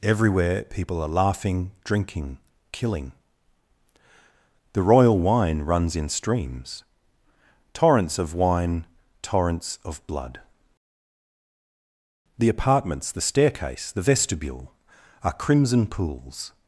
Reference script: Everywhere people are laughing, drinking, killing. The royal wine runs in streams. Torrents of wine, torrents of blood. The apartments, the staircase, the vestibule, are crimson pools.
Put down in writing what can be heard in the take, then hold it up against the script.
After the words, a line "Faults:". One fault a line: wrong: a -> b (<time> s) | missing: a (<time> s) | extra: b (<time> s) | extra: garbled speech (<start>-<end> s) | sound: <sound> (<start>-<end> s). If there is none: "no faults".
Everywhere people are laughing, drinking, killing. The royal wine runs in streams. Torrents of wine, torrents of blood. The apartments, the staircase, the vestibule, are crimson pools.
Faults:
no faults